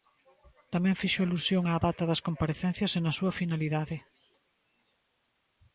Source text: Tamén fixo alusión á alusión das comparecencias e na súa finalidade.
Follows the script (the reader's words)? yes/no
no